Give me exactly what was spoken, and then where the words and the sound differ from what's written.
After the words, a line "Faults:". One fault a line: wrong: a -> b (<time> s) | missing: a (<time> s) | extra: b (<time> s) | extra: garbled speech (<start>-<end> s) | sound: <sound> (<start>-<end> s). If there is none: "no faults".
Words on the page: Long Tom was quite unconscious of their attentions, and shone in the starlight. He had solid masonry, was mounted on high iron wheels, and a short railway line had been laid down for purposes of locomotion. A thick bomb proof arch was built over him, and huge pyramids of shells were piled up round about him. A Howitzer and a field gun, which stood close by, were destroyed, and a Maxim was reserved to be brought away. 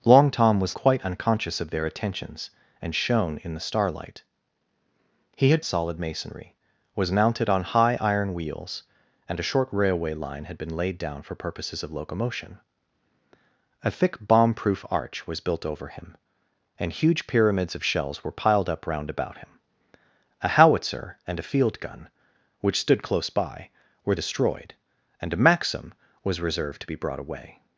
Long Tom was quite unconscious of their attentions, and shone in the starlight. He had solid masonry, was mounted on high iron wheels, and a short railway line had been laid down for purposes of locomotion. A thick bomb proof arch was built over him, and huge pyramids of shells were piled up round about him. A Howitzer and a field gun, which stood close by, were destroyed, and a Maxim was reserved to be brought away.
Faults:
no faults